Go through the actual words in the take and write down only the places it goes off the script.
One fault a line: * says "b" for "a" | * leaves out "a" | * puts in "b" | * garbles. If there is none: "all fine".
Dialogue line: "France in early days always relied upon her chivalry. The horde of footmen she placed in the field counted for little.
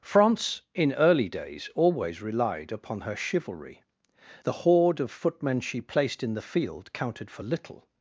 all fine